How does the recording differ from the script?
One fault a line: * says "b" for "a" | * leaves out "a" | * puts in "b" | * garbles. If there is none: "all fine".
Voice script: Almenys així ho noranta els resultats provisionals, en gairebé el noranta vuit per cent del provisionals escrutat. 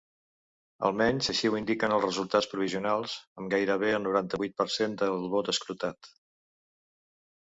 * says "indiquen" for "noranta"
* says "amb" for "en"
* says "vot" for "provisionals"